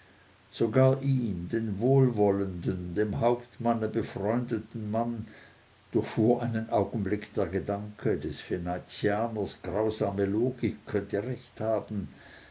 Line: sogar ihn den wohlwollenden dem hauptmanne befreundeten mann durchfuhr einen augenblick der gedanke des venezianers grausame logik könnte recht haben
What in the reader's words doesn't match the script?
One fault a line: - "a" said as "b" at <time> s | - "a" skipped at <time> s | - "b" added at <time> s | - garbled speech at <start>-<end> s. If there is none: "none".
none